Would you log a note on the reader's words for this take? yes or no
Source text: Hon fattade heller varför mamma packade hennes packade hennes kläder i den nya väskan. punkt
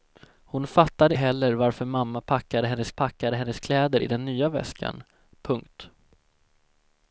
no